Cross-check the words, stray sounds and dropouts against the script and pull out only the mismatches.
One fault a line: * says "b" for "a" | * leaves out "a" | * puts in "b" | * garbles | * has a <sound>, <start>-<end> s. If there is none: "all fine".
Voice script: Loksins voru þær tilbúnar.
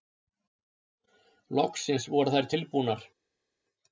all fine